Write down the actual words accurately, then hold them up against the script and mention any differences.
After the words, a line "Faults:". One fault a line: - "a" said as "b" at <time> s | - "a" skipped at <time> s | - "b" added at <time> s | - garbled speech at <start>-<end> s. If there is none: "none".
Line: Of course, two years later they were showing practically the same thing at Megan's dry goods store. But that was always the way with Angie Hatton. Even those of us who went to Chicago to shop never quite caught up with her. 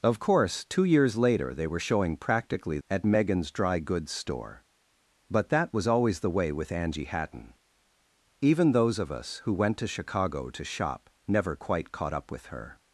Of course, two years later they were showing practically at Megan's dry goods store. But that was always the way with Angie Hatton. Even those of us who went to Chicago to shop never quite caught up with her.
Faults:
- "the same thing" skipped at 2.8 s